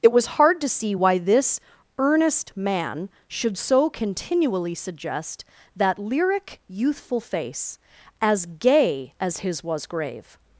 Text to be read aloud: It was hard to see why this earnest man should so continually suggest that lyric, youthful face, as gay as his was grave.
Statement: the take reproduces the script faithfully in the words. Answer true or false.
true